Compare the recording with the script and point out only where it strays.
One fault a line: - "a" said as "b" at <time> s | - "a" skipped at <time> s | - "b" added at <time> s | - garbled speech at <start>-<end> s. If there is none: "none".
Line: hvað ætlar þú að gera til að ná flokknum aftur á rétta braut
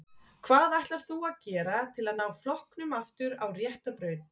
none